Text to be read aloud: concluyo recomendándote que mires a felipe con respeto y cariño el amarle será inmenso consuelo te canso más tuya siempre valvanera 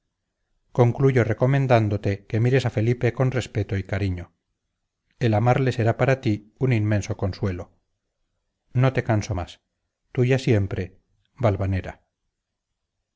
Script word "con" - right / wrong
right